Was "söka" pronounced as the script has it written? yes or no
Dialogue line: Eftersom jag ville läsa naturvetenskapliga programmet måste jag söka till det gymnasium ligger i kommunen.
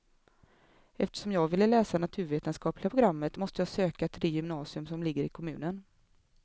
yes